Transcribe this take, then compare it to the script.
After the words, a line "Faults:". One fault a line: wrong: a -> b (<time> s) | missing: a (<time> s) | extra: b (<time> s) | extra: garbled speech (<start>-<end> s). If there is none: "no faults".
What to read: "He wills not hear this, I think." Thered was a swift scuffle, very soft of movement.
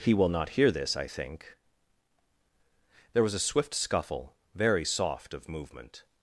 "He will not hear this, I think." There was a swift scuffle, very soft of movement.
Faults:
wrong: wills -> will (0.1 s)
wrong: Thered -> There (3.1 s)